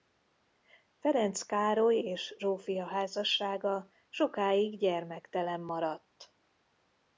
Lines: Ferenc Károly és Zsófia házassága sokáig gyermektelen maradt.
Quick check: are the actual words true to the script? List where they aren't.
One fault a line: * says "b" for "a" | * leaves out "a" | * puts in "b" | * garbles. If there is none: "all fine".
all fine